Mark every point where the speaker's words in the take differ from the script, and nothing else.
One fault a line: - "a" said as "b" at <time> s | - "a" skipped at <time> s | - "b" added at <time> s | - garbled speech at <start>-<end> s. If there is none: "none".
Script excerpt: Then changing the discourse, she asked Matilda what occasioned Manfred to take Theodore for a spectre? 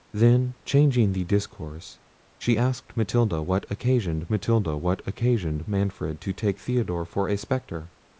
- "Matilda what occasioned" added at 4.3 s